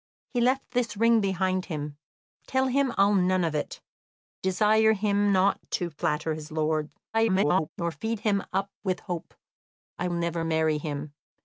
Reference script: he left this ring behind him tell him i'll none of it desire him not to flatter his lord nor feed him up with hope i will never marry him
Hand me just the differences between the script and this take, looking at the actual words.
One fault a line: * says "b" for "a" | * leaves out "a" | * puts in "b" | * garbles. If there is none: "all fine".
* garbles
* leaves out "will"